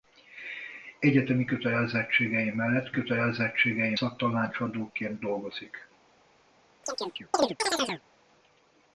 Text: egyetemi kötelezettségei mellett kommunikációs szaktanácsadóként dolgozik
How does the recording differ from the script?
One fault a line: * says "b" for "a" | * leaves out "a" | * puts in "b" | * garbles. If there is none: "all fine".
* says "kötelezettségei" for "kommunikációs"